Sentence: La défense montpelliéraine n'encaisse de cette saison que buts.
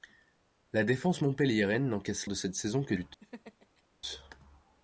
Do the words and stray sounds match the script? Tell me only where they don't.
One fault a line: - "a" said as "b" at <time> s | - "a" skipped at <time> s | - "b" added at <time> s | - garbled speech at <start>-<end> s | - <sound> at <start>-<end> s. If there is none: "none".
- laugh at 3.2-3.8 s